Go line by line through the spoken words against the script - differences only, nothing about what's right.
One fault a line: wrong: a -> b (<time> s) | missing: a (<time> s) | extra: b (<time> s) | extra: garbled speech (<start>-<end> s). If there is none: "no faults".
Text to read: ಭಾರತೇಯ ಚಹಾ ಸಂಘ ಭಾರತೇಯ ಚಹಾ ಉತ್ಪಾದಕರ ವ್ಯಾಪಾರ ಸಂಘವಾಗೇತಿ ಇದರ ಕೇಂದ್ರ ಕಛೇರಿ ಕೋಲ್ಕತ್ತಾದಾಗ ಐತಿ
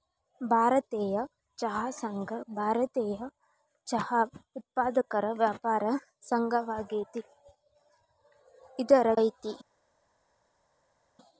missing: ಕೇಂದ್ರ ಕಛೇರಿ ಕೋಲ್ಕತ್ತಾದಾಗ (9.1 s)